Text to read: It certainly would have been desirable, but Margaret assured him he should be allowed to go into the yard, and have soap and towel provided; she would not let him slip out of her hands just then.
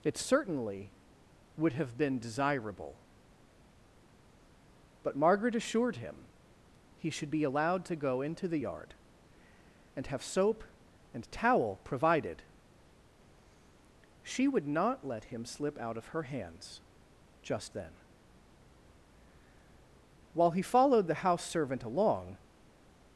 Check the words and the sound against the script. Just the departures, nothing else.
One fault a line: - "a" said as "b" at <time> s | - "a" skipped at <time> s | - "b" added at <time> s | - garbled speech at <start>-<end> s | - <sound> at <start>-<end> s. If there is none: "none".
- "While he followed the house servant along" added at 20.3 s